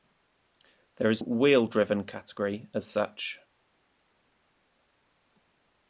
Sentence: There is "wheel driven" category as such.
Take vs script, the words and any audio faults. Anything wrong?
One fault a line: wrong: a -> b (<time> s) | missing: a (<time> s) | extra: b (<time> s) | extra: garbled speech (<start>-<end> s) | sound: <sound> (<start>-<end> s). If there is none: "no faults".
no faults